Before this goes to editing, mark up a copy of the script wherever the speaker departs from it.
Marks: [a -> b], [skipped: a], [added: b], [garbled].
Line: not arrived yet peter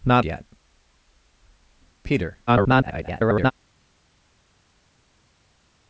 not [skipped: arrived] yet peter [garbled]